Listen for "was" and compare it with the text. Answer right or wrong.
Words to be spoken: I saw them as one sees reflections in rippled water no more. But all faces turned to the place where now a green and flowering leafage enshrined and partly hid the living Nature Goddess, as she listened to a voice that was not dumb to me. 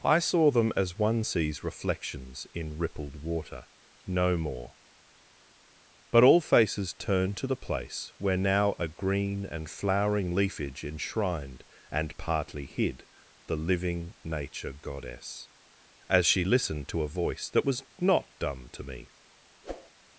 right